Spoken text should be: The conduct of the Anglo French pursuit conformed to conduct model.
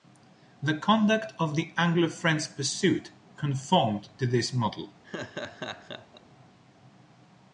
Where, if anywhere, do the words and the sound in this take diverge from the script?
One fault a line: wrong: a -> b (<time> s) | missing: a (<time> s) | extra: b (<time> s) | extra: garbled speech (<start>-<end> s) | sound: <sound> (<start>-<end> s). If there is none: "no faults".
wrong: conduct -> this (4.2 s)
sound: laugh (5.0-6.2 s)